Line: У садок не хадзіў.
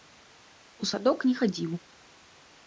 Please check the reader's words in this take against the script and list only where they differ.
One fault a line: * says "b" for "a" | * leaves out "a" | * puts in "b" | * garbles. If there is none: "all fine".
all fine